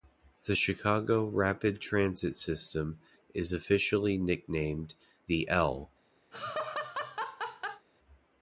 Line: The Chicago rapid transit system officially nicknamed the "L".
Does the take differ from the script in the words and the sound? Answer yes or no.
yes